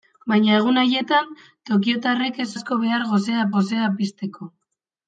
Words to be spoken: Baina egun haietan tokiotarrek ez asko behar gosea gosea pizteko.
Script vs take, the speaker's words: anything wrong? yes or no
no